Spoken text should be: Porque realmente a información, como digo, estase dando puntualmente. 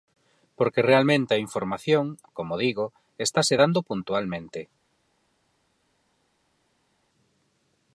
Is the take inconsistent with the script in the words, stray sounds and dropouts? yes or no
no